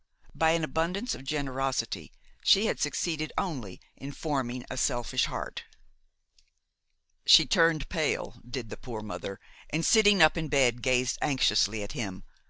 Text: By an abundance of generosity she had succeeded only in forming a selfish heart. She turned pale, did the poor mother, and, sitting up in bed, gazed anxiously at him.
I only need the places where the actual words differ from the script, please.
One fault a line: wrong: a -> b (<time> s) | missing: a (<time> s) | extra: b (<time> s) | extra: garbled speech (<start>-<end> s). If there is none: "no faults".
no faults